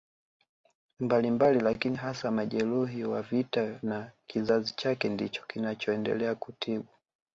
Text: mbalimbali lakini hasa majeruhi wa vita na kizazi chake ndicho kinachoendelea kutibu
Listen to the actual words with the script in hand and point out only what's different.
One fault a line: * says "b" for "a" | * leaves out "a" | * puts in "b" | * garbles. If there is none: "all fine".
all fine